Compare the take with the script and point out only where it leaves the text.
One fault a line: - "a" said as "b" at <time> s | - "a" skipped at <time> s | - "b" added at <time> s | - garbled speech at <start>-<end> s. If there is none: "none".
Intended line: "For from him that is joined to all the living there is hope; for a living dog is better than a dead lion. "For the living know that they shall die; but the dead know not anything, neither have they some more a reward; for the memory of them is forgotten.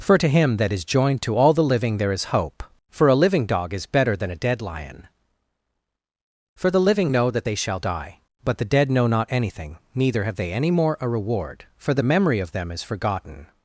- "from" said as "to" at 0.2 s
- "some" said as "any" at 10.5 s